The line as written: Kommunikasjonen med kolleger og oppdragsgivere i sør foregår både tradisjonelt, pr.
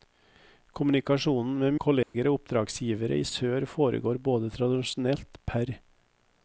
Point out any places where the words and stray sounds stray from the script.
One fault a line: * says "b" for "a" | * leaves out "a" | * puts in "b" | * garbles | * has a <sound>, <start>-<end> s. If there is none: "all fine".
* has a dropout, 2.0-2.1 s